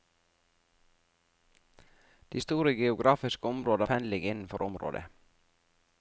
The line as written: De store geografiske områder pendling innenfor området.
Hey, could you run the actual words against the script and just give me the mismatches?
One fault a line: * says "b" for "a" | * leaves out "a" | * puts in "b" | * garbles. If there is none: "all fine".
all fine